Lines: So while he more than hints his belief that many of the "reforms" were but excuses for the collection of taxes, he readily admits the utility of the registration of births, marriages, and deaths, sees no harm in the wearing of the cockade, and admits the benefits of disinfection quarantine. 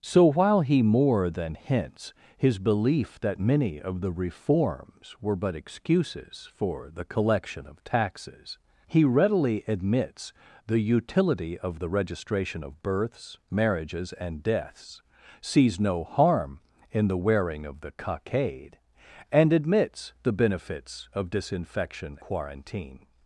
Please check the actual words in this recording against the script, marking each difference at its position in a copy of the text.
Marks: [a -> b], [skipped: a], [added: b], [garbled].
So while he more than hints his belief that many of the "reforms" were but excuses for the collection of taxes, he readily admits the utility of the registration of births, marriages, and deaths, sees no harm in the wearing of the cockade, and admits the benefits of disinfection quarantine.